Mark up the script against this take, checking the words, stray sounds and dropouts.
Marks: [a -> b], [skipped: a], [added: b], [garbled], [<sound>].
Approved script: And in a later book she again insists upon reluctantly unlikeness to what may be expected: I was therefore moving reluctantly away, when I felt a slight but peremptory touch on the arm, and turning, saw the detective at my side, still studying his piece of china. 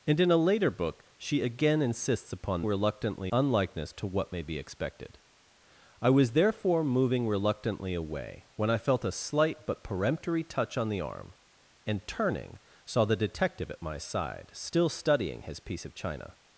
And in a later book she again insists upon reluctantly unlikeness to what may be expected: I was therefore moving reluctantly away, when I felt a slight but peremptory touch on the arm, and turning, saw the detective at my side, still studying his piece of china.